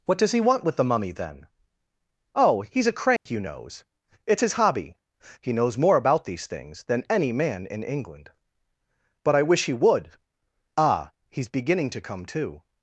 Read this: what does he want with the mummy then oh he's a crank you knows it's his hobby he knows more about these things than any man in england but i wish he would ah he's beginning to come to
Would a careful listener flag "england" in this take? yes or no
no